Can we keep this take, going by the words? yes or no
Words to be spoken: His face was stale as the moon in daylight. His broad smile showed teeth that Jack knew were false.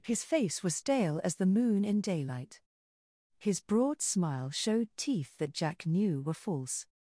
yes